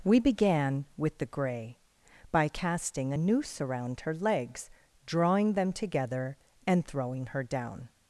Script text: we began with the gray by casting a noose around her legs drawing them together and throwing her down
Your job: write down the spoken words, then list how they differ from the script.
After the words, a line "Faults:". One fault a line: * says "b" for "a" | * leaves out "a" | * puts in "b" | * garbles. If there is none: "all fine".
we began with the gray by casting a noose around her legs drawing them together and throwing her down
Faults:
all fine